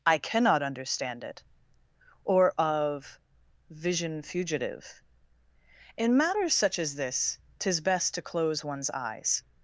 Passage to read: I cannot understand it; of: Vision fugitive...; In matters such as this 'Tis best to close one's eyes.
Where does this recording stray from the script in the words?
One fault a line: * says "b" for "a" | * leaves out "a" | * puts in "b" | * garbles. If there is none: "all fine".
* puts in "or"